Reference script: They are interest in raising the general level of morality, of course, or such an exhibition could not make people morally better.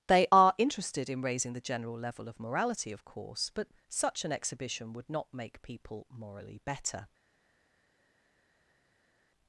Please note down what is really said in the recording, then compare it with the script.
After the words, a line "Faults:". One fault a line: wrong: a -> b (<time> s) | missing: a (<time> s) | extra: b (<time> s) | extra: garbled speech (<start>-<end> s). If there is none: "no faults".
They are interested in raising the general level of morality, of course, but such an exhibition would not make people morally better.
Faults:
wrong: interest -> interested (0.6 s)
wrong: or -> but (3.5 s)
wrong: could -> would (4.9 s)